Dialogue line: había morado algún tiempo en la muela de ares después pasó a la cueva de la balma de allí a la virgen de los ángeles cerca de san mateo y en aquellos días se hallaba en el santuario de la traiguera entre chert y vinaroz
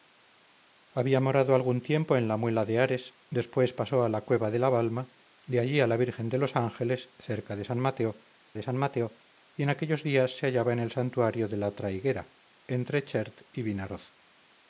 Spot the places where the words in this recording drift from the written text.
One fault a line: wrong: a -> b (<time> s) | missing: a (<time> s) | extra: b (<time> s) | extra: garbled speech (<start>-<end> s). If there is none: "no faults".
extra: de san mateo (8.5 s)